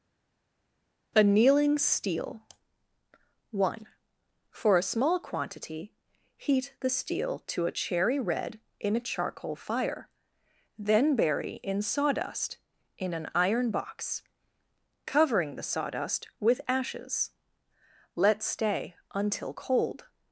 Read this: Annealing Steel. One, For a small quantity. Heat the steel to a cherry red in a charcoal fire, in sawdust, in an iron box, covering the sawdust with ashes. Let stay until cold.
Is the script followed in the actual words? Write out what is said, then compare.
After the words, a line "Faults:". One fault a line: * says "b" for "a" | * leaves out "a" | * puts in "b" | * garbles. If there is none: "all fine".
Annealing Steel. One, For a small quantity. Heat the steel to a cherry red in a charcoal fire, then bury in sawdust, in an iron box, covering the sawdust with ashes. Let stay until cold.
Faults:
* puts in "then bury"